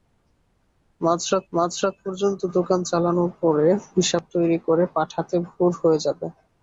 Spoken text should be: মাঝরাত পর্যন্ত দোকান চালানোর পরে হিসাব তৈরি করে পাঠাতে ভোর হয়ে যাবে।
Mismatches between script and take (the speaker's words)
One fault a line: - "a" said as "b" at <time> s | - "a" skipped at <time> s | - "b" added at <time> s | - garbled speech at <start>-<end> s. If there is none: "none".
- "মাঝরাত" added at 1.5 s